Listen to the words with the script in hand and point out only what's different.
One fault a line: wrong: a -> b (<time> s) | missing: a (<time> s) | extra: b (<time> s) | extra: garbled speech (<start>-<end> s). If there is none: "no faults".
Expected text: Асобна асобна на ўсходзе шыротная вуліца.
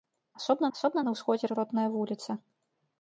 no faults